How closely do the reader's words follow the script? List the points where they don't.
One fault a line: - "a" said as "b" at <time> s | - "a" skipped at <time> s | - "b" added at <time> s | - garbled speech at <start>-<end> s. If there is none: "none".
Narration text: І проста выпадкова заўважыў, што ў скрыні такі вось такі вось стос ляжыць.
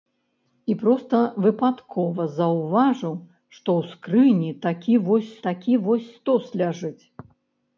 none